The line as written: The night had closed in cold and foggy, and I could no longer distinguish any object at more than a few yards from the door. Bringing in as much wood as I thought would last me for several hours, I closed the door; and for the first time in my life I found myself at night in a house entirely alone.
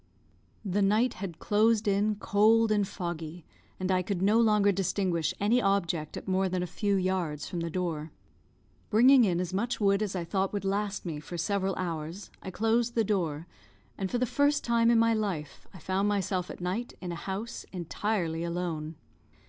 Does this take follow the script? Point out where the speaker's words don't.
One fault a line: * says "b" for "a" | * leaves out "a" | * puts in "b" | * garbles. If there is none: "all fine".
all fine